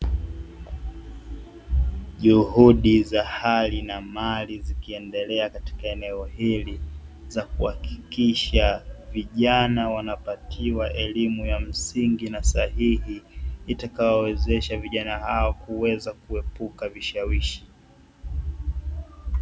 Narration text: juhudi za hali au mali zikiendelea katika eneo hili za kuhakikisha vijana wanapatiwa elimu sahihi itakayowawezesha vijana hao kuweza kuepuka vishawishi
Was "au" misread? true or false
true